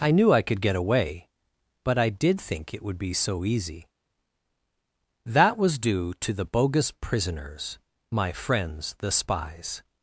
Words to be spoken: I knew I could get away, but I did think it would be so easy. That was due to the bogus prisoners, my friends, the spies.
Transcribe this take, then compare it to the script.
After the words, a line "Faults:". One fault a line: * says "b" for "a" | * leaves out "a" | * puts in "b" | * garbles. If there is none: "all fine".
I knew I could get away, but I did think it would be so easy. That was due to the bogus prisoners, my friends, the spies.
Faults:
all fine